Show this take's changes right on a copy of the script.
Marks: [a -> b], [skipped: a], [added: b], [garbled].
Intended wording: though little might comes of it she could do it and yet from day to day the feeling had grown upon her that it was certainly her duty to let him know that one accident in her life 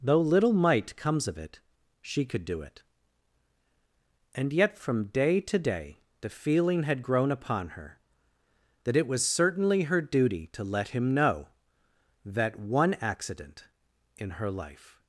though little might comes of it she could do it and yet from day to day the feeling had grown upon her that it was certainly her duty to let him know that one accident in her life